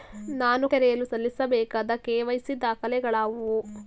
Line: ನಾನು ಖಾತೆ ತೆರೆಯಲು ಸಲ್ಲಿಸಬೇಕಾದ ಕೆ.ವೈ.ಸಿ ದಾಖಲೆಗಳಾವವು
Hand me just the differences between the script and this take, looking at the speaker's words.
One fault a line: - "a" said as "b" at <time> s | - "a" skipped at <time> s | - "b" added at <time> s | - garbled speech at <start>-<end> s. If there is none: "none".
- "ಖಾತೆ" skipped at 0.7 s